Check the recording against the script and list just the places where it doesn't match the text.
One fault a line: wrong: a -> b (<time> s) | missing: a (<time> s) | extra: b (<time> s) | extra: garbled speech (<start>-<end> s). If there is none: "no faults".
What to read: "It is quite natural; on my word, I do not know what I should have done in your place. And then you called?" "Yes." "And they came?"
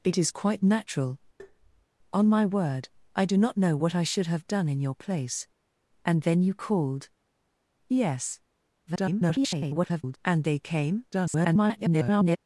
extra: garbled speech (8.9-10.2 s)
extra: garbled speech (11.1-12.4 s)